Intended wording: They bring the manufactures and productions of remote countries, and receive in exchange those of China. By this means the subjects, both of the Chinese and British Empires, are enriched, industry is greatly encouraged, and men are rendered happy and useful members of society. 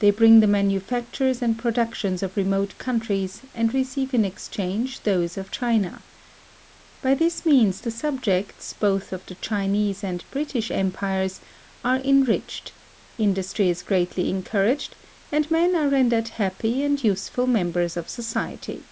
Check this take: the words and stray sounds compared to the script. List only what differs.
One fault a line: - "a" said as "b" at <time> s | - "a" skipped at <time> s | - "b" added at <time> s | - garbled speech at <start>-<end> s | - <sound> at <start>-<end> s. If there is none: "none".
none